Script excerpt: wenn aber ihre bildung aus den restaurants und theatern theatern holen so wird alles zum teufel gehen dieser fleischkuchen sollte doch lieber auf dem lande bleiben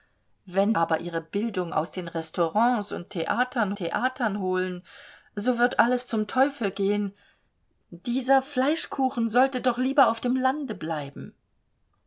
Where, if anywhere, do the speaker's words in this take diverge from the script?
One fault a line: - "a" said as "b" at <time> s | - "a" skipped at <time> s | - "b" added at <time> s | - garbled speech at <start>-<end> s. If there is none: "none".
none